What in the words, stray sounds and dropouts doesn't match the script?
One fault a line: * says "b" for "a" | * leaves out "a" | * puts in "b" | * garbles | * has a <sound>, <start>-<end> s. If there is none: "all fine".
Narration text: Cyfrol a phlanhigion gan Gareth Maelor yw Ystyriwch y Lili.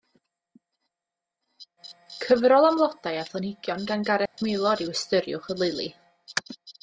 * puts in "am flodau"
* has a dropout, 4.3-4.4 s